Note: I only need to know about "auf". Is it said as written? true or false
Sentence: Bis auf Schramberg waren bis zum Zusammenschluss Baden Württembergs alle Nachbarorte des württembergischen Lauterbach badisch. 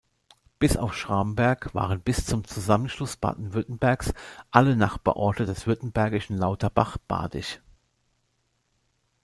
true